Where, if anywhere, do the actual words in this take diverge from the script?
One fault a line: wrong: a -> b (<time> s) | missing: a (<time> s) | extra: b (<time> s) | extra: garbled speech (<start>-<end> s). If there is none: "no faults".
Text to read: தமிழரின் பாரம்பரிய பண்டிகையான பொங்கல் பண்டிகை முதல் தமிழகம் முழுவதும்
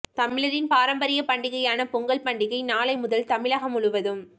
extra: நாளை (2.6 s)